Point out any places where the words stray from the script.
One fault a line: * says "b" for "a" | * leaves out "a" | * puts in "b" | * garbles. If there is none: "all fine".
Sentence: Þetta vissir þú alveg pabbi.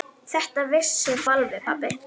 * leaves out "þú"